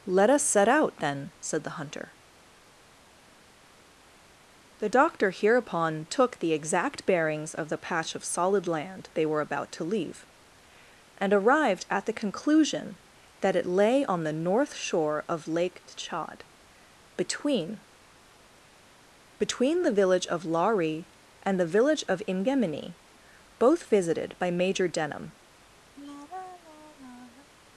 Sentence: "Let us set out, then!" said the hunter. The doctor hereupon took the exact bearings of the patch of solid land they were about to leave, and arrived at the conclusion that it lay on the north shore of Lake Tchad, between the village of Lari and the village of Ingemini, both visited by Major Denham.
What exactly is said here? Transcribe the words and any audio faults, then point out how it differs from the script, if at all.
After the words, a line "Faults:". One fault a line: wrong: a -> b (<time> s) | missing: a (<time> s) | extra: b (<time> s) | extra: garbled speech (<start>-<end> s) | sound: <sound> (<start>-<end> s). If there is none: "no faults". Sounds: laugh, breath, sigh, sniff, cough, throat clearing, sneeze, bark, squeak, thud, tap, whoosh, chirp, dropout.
"Let us set out, then!" said the hunter. The doctor hereupon took the exact bearings of the patch of solid land they were about to leave, and arrived at the conclusion that it lay on the north shore of Lake Tchad, between between the village of Lari and the village of Ingemini, both visited by Major Denham.
Faults:
extra: between (19.4 s)
sound: sigh (26.0-27.5 s)